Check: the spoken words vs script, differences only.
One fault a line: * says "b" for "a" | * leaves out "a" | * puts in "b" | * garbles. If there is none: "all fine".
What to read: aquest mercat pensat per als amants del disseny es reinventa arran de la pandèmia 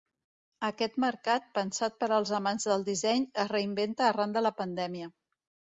all fine